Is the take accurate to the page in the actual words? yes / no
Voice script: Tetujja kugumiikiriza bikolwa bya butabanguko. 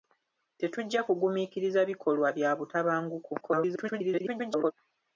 no